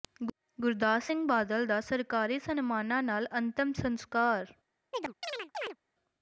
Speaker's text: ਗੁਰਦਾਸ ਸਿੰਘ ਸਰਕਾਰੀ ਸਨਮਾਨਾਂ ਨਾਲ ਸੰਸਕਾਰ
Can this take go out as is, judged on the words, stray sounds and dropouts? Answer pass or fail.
fail